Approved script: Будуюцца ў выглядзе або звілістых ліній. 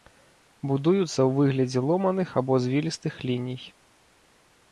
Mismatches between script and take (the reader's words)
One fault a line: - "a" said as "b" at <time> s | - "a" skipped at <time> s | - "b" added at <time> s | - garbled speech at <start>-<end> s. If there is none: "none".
- "ломаных" added at 1.9 s